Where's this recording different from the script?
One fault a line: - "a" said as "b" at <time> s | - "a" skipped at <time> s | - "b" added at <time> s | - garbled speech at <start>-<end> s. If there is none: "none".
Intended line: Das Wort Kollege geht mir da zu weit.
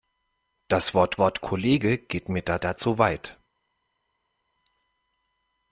- "Wort" added at 1.2 s
- "da" added at 2.6 s